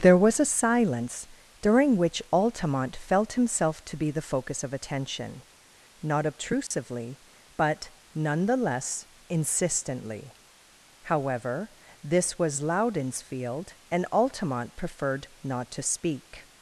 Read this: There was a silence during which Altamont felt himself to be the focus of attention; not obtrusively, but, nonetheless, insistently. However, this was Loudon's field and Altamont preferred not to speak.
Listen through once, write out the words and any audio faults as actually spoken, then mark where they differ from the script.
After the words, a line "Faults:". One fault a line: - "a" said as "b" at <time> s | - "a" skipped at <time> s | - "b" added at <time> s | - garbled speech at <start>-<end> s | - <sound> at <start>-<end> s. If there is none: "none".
There was a silence during which Altamont felt himself to be the focus of attention; not obtrusively, but, nonetheless, insistently. However, this was Loudon's field and Altamont preferred not to speak.
Faults:
- dropout at 6.7-6.7 s